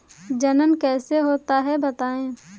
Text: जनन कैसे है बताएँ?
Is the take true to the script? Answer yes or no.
no